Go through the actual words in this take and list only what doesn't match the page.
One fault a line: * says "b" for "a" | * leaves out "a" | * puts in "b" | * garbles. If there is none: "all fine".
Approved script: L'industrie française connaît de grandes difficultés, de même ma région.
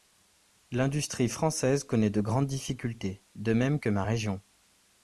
* puts in "que"